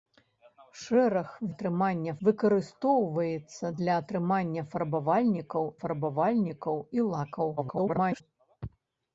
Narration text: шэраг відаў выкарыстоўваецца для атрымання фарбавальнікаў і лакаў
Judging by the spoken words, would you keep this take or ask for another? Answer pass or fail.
fail